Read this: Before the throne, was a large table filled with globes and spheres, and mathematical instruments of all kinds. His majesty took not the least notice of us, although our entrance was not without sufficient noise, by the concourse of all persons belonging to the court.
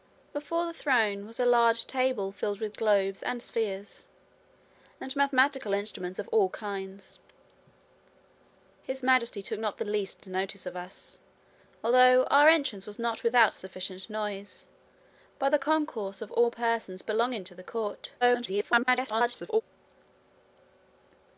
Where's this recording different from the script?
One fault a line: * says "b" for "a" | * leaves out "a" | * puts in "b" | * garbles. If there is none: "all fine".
* garbles